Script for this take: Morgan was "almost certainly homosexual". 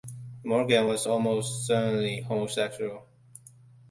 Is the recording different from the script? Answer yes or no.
no